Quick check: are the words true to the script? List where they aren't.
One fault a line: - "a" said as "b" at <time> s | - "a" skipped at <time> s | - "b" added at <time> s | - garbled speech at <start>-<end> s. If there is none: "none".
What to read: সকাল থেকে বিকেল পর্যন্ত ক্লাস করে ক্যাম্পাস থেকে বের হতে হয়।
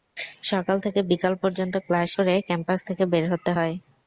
none